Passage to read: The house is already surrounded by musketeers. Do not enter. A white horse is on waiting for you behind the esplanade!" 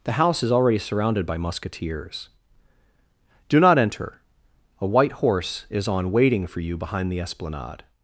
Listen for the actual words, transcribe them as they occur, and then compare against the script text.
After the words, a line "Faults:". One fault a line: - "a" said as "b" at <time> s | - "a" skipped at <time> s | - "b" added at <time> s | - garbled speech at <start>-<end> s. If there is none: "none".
The house is already surrounded by musketeers. Do not enter. A white horse is on waiting for you behind the esplanade!"
Faults:
none